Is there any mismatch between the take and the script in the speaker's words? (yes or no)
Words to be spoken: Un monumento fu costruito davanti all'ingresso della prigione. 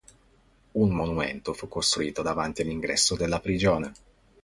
no